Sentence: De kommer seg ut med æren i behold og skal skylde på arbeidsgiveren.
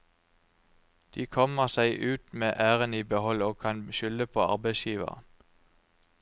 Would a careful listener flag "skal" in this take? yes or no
yes